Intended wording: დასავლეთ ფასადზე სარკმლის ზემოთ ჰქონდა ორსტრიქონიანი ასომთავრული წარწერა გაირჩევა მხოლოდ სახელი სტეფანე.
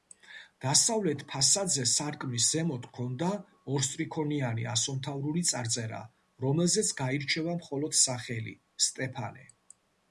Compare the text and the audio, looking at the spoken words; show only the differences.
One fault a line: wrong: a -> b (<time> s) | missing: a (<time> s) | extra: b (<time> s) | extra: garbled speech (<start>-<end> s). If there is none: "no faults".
extra: რომელზეც (6.5 s)